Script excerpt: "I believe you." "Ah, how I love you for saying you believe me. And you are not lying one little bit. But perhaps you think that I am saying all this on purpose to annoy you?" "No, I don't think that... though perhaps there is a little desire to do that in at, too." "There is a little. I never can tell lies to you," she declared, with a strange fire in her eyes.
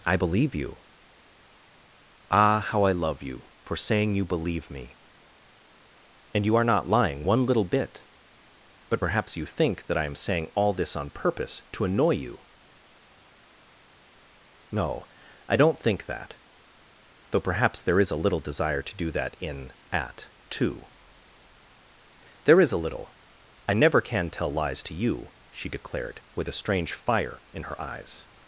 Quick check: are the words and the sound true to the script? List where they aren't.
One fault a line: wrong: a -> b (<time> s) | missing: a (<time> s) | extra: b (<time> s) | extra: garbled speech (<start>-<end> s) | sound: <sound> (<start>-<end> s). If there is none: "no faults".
no faults